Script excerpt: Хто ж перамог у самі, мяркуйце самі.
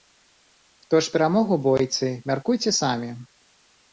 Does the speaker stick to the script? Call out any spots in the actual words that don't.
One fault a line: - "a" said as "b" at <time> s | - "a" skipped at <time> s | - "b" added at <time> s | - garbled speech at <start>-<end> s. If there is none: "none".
- "самі" said as "бойцы" at 1.7 s